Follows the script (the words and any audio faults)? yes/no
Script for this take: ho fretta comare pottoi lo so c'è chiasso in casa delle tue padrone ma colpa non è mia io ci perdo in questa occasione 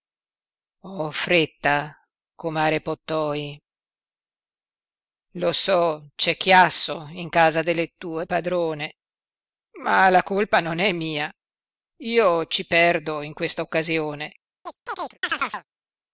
no